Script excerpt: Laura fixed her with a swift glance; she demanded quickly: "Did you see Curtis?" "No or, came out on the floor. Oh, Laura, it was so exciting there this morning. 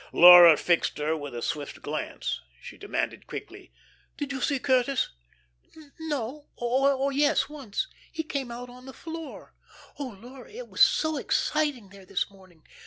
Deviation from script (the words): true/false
true